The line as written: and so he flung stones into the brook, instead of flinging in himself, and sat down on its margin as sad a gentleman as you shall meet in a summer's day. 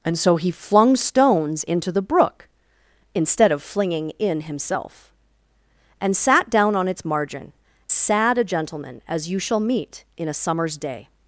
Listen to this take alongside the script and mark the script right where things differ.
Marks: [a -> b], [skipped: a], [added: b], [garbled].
and so he flung stones into the brook, instead of flinging in himself, and sat down on its margin [skipped: as] sad a gentleman as you shall meet in a summer's day.